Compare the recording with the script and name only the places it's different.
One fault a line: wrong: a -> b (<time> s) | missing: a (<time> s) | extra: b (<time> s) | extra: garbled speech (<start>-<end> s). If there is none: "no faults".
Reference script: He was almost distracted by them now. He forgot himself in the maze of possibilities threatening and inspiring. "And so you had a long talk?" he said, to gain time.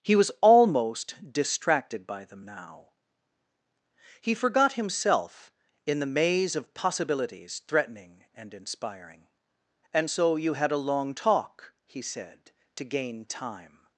no faults